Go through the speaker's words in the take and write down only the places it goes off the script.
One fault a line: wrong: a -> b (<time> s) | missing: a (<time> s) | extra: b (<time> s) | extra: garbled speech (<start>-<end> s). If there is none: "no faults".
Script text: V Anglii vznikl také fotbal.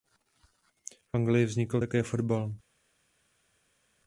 no faults